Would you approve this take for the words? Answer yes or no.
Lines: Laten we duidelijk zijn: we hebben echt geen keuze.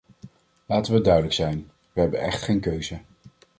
yes